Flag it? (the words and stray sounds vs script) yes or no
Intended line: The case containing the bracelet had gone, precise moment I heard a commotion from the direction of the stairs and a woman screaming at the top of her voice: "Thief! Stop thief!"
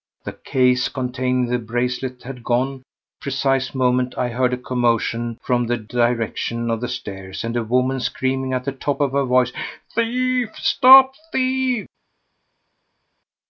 no